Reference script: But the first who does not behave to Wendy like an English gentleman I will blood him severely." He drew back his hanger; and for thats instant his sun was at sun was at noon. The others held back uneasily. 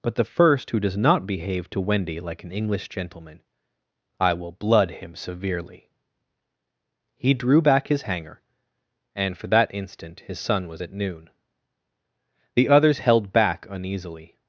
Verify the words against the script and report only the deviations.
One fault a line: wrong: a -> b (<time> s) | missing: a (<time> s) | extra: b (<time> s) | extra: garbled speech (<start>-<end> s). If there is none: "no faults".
wrong: thats -> that (9.5 s)
missing: sun was at (10.9 s)